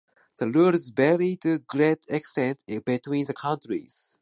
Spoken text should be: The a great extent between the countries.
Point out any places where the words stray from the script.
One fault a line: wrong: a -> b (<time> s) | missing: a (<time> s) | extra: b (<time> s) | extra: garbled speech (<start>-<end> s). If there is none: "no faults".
extra: rules vary to (0.5 s)